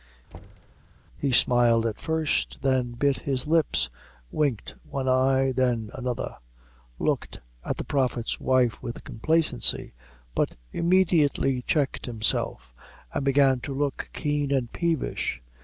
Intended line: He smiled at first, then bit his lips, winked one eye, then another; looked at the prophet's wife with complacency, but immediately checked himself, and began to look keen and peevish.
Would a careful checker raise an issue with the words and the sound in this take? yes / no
yes